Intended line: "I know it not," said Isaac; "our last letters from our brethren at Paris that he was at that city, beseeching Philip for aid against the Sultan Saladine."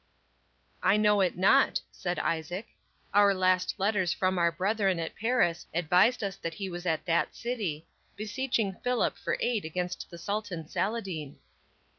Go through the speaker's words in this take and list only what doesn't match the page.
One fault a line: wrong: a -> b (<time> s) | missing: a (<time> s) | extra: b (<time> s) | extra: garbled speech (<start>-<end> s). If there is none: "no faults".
extra: advised us (5.8 s)